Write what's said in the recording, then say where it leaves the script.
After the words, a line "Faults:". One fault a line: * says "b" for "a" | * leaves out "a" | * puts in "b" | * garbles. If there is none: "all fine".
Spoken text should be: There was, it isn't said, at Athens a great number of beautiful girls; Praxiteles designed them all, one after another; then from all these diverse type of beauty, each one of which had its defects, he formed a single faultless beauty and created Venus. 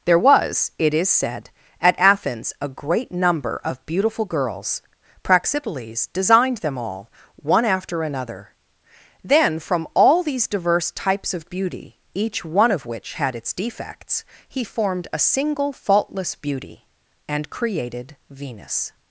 There was, it is said, at Athens a great number of beautiful girls; Praxiteles designed them all, one after another; then from all these diverse types of beauty, each one of which had its defects, he formed a single faultless beauty and created Venus.
Faults:
* says "is" for "isn't"
* says "types" for "type"